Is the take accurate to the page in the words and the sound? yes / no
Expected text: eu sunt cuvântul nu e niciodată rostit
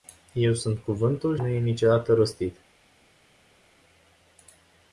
yes